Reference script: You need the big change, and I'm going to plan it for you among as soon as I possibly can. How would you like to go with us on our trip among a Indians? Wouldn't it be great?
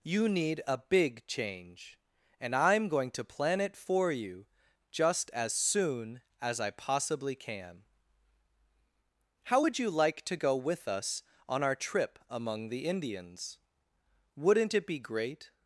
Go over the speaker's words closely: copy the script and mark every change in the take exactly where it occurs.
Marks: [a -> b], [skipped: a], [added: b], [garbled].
You need [the -> a] big change, and I'm going to plan it for you [among -> just] as soon as I possibly can. How would you like to go with us on our trip among [a -> the] Indians? Wouldn't it be great?